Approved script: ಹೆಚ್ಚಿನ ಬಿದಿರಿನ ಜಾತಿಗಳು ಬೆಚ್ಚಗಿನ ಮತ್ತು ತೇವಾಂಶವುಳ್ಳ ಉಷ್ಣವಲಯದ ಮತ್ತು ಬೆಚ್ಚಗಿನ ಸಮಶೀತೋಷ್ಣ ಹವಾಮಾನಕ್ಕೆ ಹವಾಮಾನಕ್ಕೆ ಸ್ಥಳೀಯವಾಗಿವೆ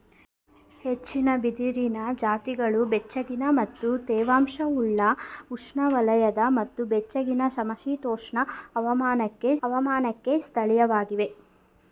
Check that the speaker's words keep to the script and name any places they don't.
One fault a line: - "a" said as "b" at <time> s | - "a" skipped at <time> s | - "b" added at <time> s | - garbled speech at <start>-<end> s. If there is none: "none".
none